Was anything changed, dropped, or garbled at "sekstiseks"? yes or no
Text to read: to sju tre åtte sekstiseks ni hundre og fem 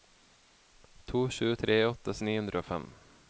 yes